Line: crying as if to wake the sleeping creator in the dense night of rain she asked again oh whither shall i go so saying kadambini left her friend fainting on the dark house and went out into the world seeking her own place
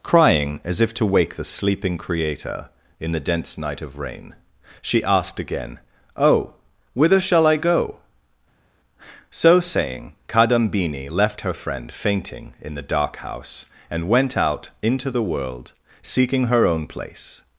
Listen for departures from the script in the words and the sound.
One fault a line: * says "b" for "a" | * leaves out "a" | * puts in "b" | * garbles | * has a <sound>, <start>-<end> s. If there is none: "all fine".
* says "in" for "on"